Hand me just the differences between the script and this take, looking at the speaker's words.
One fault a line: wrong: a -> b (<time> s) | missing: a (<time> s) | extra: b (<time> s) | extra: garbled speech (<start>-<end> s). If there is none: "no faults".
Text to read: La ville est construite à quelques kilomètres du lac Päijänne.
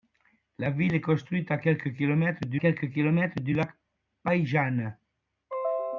extra: quelques kilomètres du (2.6 s)